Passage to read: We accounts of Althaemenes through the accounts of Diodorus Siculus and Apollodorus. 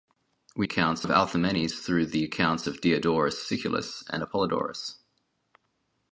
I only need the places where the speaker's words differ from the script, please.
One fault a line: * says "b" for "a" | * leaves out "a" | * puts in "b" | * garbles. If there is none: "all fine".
all fine